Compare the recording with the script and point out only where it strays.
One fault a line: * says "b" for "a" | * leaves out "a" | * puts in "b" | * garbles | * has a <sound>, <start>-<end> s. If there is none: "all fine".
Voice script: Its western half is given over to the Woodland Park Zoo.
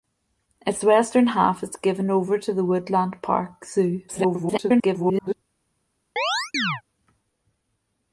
* garbles
* has a chirp, 6.2-6.8 s